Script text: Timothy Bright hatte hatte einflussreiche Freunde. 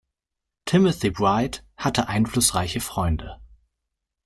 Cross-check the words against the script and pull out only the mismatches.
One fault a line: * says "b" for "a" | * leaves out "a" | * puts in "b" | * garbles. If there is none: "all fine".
* leaves out "hatte"